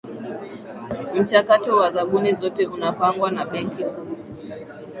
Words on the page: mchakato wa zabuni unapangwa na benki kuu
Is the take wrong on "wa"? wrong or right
right